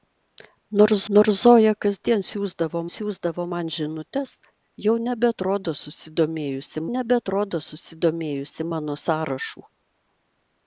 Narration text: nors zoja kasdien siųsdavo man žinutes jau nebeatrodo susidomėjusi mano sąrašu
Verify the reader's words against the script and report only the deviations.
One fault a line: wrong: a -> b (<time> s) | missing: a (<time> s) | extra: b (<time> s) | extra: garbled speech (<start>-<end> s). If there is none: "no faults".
extra: nors (1.2 s)
extra: siųsdavo (2.9 s)
extra: nebeatrodo susidomėjusi (7.0 s)